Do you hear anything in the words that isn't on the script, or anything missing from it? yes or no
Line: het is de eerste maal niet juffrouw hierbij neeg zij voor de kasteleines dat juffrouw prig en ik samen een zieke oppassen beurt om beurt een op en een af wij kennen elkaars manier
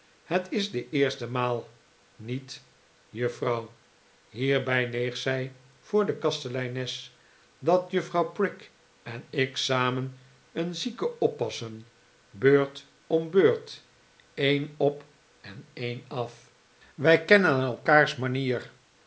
no